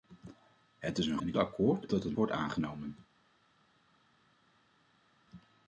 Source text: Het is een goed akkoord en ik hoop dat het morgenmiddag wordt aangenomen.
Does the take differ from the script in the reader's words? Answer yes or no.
yes